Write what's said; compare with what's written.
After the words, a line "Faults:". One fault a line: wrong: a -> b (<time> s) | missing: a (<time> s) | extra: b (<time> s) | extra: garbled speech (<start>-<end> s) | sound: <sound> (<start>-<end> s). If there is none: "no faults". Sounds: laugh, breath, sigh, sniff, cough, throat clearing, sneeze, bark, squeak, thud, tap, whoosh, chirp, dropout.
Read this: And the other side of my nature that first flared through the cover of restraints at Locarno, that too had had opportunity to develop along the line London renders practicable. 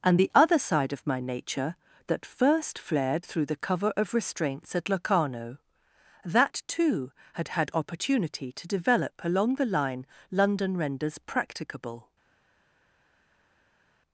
And the other side of my nature that first flared through the cover of restraints at Locarno, that too had had opportunity to develop along the line London renders practicable.
Faults:
no faults